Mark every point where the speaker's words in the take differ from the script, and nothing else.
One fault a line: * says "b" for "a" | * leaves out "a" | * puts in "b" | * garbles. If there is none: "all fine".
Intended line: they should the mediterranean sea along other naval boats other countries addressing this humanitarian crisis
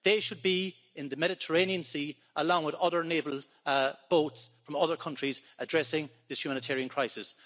* puts in "be in"
* puts in "with"
* puts in "from"